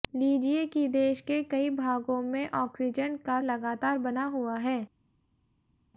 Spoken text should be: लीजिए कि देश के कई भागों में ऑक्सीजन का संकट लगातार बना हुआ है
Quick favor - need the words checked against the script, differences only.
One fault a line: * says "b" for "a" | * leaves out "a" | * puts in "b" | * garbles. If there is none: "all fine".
* leaves out "संकट"